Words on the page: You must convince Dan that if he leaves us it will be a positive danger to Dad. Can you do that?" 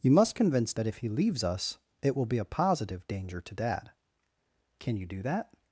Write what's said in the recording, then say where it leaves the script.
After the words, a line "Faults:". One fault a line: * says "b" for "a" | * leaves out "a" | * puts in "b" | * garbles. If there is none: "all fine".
You must convince That if he leaves us it will be a positive danger to Dad. Can you do that?"
Faults:
* leaves out "Dan"